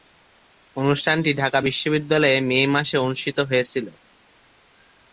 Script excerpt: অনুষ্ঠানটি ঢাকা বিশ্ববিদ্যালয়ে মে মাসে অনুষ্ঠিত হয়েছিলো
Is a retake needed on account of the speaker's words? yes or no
no